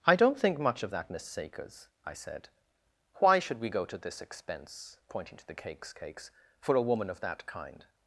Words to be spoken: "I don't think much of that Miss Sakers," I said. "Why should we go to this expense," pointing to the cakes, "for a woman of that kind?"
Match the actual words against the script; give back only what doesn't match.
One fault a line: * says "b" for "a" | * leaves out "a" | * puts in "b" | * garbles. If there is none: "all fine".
* puts in "cakes"